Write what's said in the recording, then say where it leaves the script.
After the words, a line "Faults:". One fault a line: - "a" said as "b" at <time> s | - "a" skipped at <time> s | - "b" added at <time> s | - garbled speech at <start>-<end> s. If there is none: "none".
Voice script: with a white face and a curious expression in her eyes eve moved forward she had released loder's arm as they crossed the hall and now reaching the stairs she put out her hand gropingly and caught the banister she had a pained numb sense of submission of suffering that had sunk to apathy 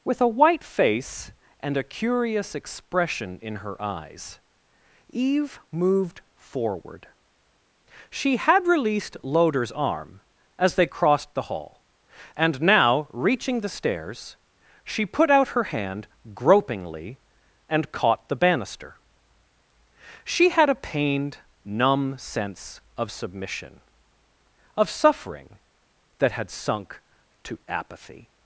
with a white face and a curious expression in her eyes eve moved forward she had released loder's arm as they crossed the hall and now reaching the stairs she put out her hand gropingly and caught the banister she had a pained numb sense of submission of suffering that had sunk to apathy
Faults:
none